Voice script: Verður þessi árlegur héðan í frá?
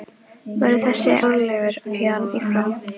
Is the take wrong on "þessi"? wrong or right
right